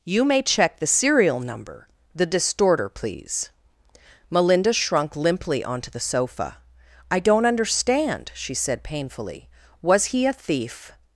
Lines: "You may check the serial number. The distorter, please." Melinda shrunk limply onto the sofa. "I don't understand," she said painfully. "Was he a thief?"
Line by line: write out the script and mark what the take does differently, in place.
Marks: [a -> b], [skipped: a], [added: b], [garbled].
"You may check the serial number. The distorter, please." Melinda shrunk limply onto the sofa. "I don't understand," she said painfully. "Was he a thief?"